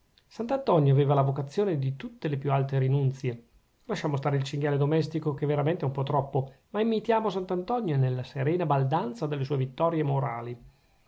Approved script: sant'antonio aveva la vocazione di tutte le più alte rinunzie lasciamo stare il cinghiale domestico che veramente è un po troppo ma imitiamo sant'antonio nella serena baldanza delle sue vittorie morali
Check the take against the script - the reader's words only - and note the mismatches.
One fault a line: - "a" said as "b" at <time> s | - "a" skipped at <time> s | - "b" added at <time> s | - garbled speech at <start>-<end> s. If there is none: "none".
none